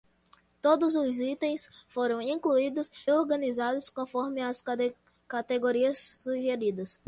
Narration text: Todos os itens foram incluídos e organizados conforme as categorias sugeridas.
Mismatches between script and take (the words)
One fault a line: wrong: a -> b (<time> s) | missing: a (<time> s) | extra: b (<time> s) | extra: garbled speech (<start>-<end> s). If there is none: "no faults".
missing: e (2.9 s)